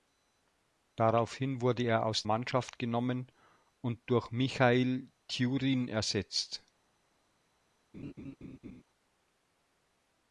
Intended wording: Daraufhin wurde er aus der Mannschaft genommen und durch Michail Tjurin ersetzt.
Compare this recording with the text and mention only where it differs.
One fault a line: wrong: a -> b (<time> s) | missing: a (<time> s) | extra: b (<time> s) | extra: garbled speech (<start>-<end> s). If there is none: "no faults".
missing: der (2.2 s)